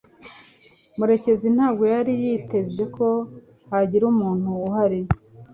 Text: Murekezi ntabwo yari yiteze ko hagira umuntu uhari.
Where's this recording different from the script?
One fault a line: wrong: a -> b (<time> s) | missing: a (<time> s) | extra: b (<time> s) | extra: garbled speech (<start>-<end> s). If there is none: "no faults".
no faults